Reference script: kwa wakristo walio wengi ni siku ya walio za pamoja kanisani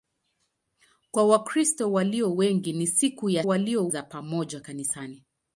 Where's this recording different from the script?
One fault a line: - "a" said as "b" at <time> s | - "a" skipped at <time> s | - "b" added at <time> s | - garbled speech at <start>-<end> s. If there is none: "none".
none